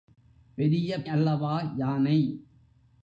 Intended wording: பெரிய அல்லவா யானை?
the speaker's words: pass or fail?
pass